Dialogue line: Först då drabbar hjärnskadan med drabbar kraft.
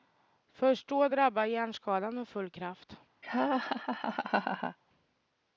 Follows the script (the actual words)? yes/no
no